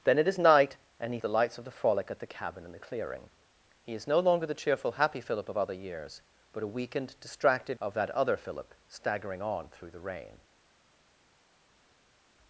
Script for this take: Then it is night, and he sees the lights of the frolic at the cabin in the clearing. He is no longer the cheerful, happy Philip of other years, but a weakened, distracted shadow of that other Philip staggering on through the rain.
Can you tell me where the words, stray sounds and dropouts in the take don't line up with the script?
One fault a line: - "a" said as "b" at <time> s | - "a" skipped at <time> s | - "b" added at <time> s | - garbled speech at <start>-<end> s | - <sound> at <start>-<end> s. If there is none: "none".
- "sees" skipped at 1.2 s
- "shadow" skipped at 7.8 s